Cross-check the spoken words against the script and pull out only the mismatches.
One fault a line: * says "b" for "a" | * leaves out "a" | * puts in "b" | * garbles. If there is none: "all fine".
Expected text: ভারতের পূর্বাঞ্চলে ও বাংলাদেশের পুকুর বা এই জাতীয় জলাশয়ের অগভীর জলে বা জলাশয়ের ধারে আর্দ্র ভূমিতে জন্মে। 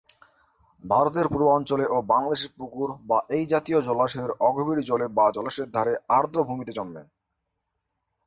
all fine